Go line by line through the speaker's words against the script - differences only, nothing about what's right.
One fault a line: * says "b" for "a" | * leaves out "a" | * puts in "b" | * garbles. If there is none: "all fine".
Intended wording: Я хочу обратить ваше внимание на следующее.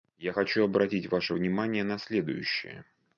all fine